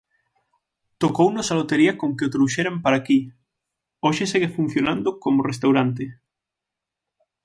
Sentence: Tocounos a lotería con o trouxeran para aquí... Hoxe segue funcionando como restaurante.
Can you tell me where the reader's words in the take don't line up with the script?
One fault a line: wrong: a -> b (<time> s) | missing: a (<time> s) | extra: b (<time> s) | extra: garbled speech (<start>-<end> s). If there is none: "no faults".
extra: que (2.2 s)